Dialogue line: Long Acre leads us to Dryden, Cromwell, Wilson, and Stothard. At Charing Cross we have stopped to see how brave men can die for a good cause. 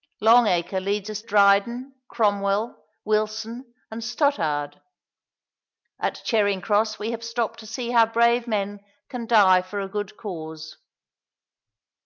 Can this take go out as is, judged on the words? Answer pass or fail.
fail